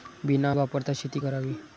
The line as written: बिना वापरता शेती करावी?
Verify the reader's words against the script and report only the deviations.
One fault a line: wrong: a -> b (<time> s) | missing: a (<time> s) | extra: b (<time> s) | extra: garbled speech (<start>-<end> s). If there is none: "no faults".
no faults